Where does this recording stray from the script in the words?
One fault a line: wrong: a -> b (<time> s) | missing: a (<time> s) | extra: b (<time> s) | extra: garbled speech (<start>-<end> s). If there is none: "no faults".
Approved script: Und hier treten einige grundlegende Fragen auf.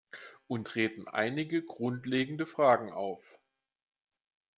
missing: hier (0.7 s)